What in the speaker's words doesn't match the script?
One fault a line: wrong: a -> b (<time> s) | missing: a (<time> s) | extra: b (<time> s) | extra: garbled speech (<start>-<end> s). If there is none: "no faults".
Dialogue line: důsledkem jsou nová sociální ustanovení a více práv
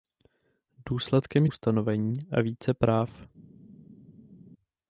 missing: jsou nová sociální (1.4 s)